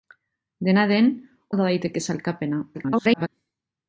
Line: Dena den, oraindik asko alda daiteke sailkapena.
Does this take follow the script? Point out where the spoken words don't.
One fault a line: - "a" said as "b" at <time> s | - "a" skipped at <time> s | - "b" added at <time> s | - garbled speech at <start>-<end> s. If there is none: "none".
- "oraindik asko" skipped at 1.1 s
- garbled speech at 2.7-3.3 s